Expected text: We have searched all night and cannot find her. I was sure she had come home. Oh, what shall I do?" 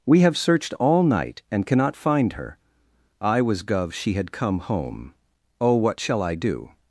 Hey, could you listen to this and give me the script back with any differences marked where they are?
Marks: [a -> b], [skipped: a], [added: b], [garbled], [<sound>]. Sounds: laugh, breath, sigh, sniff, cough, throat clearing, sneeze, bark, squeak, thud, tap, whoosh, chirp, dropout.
We have searched all night and cannot find her. I was [sure -> gov] she had come home. Oh, what shall I do?"